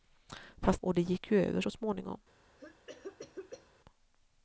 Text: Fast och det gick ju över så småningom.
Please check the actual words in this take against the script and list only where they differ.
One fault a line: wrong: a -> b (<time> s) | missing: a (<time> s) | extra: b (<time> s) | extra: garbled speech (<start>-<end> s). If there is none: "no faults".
no faults